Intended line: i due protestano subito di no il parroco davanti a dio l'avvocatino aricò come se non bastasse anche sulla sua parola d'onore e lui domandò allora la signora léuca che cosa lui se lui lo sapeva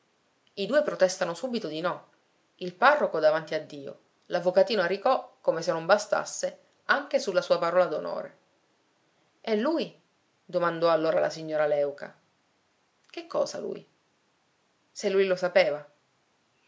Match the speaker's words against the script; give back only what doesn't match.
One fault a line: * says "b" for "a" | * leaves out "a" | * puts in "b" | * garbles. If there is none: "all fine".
all fine